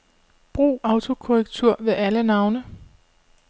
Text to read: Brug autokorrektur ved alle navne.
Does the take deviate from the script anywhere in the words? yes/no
no